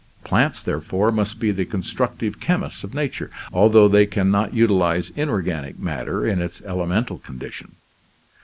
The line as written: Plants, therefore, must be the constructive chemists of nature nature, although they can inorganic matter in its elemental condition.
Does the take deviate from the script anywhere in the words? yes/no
yes